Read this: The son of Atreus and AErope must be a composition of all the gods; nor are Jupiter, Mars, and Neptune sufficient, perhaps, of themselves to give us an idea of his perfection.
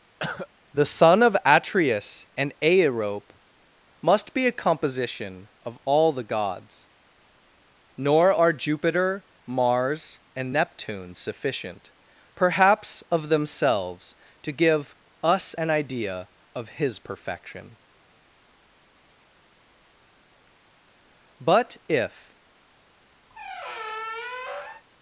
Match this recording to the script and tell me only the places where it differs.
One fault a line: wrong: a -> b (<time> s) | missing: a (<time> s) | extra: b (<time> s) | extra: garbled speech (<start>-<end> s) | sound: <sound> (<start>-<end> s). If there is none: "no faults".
sound: cough (0.2-0.5 s)
extra: But if (21.4 s)
sound: squeak (23.3-24.8 s)